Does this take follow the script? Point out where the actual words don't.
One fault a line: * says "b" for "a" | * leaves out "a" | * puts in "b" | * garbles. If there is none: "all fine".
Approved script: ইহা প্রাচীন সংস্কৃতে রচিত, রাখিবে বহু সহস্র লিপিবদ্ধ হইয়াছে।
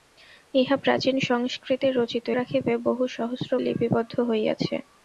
all fine